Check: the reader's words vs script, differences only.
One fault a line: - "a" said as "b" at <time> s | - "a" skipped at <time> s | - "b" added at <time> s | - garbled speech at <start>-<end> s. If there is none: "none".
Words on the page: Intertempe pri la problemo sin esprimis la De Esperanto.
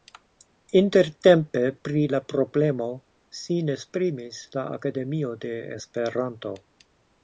- "Akademio" added at 4.8 s